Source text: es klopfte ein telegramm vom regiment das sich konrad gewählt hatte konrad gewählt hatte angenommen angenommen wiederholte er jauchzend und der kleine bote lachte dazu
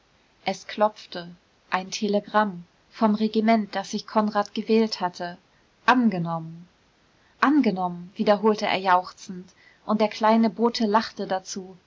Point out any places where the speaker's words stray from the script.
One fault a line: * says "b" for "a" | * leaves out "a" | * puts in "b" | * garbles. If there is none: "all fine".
* leaves out "konrad gewählt hatte"